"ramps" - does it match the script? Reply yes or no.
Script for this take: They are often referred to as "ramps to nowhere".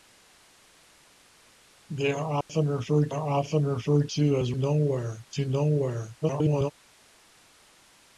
no